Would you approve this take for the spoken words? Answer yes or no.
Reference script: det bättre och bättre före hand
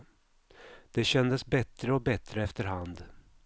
no